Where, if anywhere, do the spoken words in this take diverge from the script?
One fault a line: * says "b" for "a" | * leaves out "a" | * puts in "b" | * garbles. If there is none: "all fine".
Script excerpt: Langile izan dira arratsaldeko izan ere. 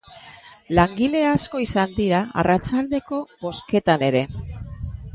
* puts in "asko"
* says "bozketan" for "izan"